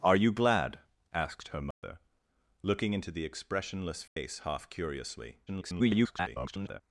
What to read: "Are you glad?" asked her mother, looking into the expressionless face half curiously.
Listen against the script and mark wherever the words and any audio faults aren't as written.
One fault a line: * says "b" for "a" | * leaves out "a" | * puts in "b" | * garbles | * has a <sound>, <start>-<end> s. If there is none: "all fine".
* has a dropout, 1.7-1.8 s
* has a dropout, 4.1-4.2 s
* garbles